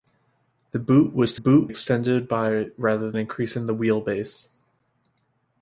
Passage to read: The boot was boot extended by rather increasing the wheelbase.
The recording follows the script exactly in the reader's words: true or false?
true